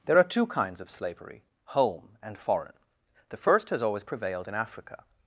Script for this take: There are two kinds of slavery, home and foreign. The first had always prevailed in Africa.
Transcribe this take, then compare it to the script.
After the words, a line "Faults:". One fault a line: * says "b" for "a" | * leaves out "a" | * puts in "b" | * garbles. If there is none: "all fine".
There are two kinds of slavery, home and foreign. The first has always prevailed in Africa.
Faults:
* says "has" for "had"